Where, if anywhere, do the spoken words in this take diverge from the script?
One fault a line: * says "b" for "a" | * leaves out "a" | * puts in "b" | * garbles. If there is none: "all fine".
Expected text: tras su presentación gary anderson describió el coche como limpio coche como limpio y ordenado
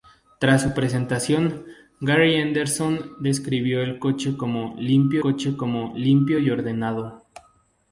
all fine